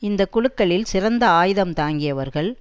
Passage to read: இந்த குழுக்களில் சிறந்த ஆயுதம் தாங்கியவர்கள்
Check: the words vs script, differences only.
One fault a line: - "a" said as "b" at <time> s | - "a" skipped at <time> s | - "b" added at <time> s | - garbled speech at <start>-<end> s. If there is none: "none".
none